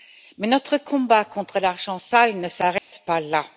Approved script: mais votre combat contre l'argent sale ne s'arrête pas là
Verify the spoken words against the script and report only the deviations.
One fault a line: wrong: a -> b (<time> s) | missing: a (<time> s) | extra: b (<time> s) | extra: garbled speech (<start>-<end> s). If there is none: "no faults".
wrong: votre -> notre (0.5 s)